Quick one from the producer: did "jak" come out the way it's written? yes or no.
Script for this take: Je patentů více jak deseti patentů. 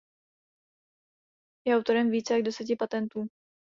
yes